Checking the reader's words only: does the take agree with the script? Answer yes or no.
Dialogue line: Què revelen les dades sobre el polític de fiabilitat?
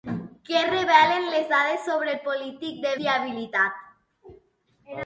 yes